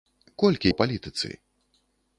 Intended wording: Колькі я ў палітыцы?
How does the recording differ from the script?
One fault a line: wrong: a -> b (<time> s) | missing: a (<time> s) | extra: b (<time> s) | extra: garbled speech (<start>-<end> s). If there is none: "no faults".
missing: я (0.7 s)